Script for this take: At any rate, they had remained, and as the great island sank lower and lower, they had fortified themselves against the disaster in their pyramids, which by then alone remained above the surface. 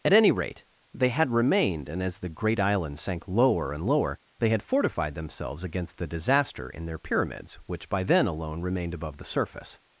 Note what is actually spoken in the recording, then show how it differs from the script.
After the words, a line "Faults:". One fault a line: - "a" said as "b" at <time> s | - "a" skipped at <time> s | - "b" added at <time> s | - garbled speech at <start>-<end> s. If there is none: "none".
At any rate, they had remained, and as the great island sank lower and lower, they had fortified themselves against the disaster in their pyramids, which by then alone remained above the surface.
Faults:
none